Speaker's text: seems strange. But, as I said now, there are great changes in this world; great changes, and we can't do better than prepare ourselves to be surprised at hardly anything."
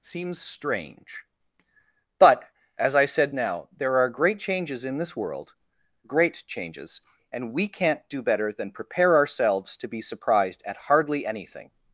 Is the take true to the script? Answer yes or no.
yes